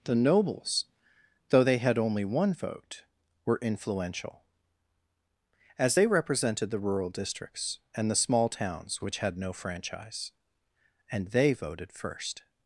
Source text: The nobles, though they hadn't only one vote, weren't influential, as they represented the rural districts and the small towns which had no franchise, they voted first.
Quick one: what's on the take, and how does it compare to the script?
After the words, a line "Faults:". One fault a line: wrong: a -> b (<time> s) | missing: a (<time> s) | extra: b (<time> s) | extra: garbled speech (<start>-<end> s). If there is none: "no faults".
The nobles, though they had only one vote, were influential, as they represented the rural districts and the small towns which had no franchise, and they voted first.
Faults:
wrong: hadn't -> had (1.8 s)
wrong: weren't -> were (3.4 s)
extra: and (11.1 s)